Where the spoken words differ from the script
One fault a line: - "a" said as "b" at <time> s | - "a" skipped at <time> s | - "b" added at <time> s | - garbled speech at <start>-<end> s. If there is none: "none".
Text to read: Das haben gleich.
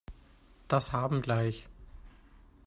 none